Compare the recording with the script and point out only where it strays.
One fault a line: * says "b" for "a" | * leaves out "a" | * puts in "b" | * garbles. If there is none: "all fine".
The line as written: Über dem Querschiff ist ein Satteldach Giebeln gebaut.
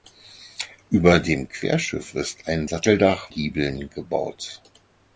all fine